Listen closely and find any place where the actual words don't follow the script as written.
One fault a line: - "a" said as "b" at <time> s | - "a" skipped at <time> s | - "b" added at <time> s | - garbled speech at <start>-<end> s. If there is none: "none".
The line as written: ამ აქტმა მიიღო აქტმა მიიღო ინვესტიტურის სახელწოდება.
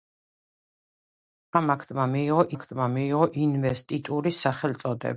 none